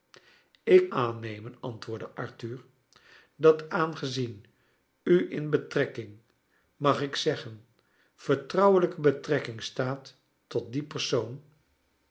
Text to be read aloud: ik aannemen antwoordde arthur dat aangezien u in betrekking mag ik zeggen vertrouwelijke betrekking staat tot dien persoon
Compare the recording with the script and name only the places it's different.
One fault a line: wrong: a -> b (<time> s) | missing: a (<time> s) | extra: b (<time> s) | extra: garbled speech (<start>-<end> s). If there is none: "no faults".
no faults